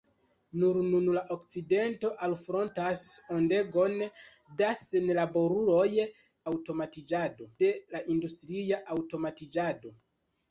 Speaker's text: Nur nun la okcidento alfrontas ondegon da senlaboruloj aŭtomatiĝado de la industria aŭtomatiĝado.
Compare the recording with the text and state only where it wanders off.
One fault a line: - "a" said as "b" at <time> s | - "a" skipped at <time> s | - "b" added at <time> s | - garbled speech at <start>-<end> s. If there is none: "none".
none